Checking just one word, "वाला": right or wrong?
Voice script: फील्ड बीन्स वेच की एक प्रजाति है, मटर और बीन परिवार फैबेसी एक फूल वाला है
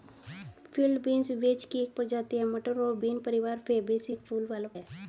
right